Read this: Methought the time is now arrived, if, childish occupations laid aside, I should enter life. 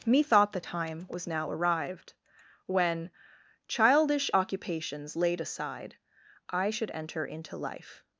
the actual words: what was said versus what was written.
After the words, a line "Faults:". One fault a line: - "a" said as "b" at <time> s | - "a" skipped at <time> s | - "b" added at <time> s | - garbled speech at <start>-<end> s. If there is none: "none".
Methought the time was now arrived, when, childish occupations laid aside, I should enter into life.
Faults:
- "is" said as "was" at 1.1 s
- "if" said as "when" at 2.7 s
- "into" added at 7.3 s